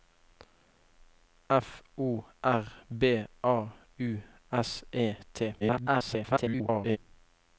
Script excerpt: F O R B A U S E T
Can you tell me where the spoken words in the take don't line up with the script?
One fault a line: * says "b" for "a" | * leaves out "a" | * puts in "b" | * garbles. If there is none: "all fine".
* garbles